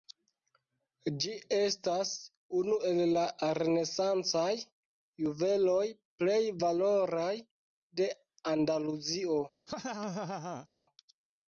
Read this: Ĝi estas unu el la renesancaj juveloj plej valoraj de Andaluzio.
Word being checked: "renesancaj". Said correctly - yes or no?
yes